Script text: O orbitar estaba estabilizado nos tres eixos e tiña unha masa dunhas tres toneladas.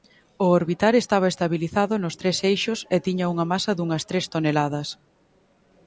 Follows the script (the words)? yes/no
yes